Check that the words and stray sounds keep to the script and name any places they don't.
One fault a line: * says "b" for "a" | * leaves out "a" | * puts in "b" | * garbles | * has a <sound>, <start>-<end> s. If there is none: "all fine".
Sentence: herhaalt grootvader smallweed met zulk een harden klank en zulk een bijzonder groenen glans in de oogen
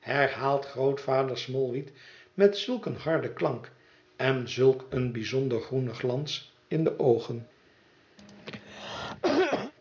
* has a cough, 8.2-9.7 s